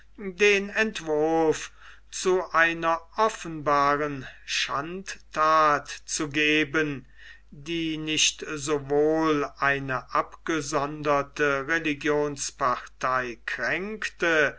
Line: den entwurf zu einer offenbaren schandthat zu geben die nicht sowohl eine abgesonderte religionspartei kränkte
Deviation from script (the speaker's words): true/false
false